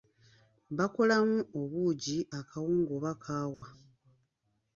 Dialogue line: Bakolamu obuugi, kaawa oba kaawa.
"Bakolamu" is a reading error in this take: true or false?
false